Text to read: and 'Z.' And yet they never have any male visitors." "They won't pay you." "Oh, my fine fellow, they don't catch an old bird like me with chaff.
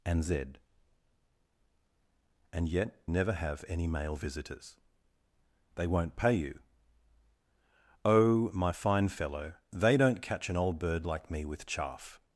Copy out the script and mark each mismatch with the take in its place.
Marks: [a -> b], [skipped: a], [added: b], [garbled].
and 'Z.' And yet [skipped: they] never have any male visitors." "They won't pay you." "Oh, my fine fellow, they don't catch an old bird like me with chaff.